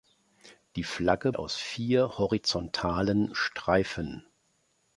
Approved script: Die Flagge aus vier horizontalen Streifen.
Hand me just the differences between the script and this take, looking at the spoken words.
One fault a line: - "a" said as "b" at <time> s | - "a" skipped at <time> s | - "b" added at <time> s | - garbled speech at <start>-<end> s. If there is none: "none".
none